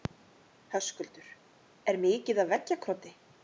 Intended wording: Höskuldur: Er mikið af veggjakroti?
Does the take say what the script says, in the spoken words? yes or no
yes